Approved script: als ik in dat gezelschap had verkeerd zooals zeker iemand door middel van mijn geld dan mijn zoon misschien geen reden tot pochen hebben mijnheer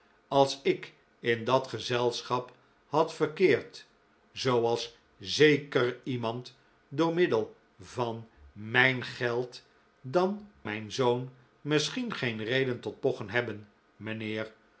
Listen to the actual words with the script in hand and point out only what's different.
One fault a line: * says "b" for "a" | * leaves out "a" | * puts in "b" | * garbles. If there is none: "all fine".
all fine